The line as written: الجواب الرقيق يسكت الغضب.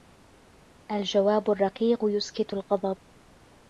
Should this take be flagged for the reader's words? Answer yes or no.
no